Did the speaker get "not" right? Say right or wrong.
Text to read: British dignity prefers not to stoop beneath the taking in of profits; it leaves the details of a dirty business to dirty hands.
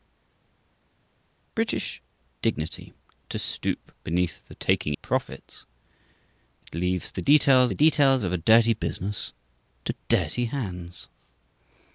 wrong